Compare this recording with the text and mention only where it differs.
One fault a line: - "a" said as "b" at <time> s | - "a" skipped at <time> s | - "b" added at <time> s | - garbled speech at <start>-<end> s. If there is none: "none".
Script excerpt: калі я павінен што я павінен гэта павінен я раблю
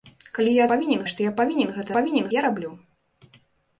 none